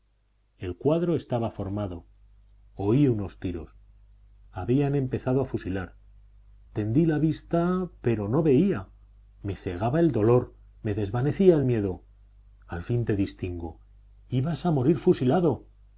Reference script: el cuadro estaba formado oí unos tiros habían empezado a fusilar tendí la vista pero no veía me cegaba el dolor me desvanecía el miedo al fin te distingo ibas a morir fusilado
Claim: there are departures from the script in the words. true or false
false